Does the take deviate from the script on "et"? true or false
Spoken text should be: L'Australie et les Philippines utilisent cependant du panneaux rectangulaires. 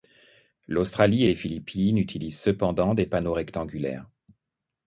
false